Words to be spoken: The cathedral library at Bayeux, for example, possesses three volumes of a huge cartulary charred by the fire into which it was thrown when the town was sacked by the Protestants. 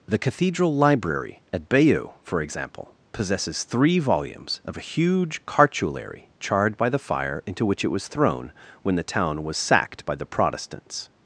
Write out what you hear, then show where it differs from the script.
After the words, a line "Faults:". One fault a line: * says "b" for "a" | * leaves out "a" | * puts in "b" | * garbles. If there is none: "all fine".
The cathedral library at Bayeux, for example, possesses three volumes of a huge cartulary charred by the fire into which it was thrown when the town was sacked by the Protestants.
Faults:
all fine